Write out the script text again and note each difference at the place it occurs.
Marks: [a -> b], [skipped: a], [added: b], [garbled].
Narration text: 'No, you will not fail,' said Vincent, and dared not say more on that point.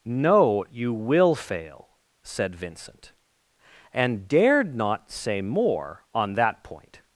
'No, you will [skipped: not] fail,' said Vincent, and dared not say more on that point.